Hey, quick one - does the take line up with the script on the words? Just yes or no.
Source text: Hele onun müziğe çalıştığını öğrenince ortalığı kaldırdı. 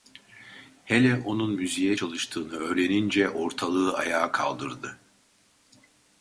no